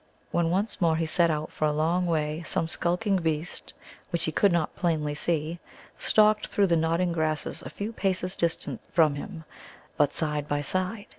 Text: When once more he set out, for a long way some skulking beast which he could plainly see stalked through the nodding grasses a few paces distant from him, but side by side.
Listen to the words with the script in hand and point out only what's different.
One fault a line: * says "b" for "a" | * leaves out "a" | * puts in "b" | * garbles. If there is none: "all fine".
* puts in "not"